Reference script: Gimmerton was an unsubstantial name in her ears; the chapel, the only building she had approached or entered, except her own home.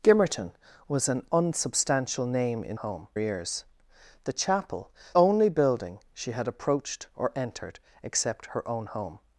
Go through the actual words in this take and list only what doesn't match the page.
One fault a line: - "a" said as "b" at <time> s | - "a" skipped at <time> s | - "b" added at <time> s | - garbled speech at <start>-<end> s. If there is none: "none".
- "her" said as "home" at 2.7 s
- "the" skipped at 4.9 s